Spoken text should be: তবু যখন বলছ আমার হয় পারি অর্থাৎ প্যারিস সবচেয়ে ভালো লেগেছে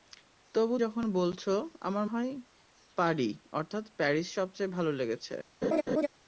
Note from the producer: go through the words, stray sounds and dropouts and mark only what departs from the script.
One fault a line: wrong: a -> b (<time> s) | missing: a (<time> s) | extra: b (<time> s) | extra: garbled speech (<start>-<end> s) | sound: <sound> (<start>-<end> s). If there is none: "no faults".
sound: laugh (5.6-6.1 s)